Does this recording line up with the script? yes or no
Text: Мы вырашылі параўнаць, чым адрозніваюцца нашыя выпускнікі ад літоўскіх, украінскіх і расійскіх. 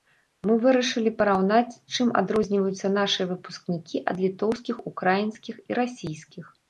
yes